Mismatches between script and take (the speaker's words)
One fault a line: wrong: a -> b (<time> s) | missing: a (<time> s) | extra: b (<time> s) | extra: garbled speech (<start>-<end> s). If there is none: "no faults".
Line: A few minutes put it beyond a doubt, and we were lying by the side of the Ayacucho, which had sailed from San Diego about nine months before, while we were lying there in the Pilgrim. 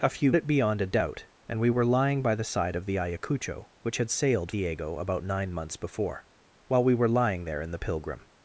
missing: minutes put (0.3 s)
missing: from San (4.5 s)